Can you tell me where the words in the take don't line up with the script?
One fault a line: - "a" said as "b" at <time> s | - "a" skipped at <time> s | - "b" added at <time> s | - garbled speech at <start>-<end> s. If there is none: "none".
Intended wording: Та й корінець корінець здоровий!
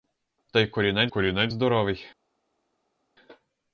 none